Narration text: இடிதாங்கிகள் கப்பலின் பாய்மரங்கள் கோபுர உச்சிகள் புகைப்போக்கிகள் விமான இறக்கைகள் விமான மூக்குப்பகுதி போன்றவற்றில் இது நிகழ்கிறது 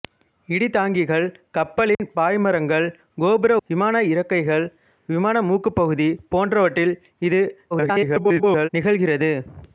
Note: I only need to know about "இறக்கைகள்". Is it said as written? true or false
true